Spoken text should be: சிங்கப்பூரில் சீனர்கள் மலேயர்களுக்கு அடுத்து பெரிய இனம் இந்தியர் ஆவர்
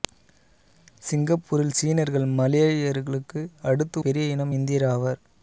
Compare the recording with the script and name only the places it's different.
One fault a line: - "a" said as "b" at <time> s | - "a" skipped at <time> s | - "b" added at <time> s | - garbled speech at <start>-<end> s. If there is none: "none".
none